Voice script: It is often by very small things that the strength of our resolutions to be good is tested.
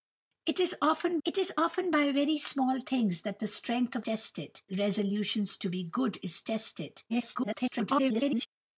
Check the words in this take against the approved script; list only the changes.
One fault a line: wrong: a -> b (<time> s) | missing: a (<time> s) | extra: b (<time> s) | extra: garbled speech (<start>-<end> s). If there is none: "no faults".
extra: it is often (1.3 s)
wrong: our -> tested (4.0 s)
extra: garbled speech (7.1-8.5 s)